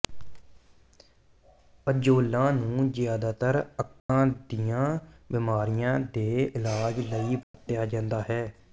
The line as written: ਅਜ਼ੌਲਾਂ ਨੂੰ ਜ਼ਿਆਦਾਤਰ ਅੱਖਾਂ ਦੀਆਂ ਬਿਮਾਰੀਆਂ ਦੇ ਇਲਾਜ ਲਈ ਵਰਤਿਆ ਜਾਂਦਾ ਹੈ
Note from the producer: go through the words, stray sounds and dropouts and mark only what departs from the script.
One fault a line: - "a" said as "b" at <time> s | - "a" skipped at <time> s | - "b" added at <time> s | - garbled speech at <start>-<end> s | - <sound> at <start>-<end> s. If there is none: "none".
- dropout at 4.0-4.1 s
- dropout at 7.4-7.5 s